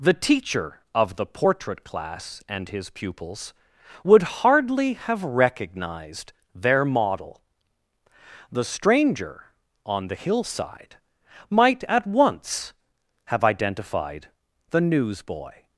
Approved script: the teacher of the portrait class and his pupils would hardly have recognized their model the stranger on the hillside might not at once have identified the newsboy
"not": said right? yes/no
no